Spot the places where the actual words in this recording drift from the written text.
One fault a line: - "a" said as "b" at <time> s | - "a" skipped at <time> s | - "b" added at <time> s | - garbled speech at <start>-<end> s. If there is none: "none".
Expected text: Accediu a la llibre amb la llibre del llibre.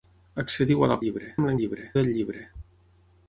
none